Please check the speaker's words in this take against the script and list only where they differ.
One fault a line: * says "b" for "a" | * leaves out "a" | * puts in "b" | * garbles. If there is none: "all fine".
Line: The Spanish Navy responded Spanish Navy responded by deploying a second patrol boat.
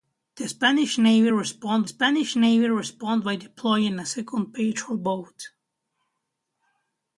all fine